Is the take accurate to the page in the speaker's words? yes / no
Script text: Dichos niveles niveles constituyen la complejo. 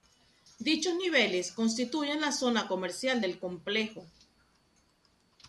no